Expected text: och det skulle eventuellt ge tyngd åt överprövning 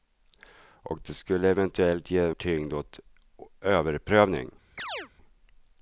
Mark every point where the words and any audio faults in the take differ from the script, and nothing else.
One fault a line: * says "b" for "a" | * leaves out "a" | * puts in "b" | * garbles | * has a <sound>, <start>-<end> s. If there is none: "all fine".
* has a chirp, 4.8-5.1 s